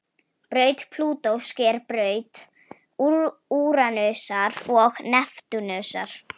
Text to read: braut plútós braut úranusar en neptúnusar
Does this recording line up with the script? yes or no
no